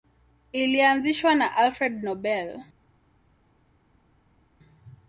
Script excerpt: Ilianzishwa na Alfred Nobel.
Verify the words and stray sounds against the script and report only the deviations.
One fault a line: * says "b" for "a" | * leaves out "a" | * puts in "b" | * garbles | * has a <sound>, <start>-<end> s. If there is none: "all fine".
all fine